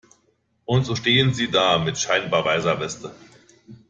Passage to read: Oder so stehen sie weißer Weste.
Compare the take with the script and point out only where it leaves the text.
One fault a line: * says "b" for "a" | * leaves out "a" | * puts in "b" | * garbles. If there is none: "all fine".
* says "Und" for "Oder"
* puts in "da mit scheinbar"